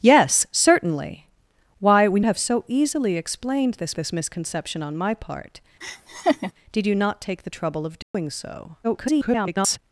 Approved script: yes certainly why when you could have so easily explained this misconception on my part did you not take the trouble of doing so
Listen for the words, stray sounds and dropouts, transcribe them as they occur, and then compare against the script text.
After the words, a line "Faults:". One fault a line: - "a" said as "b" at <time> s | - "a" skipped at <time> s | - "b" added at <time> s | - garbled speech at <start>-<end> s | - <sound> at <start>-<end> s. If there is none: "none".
yes certainly why when have so easily explained this this misconception on my part did you not take the trouble of doing so [garbled]
Faults:
- "you could" skipped at 2.2 s
- "this" added at 3.9 s
- laugh at 5.8-6.5 s
- dropout at 8.0-8.1 s
- garbled speech at 8.8-9.8 s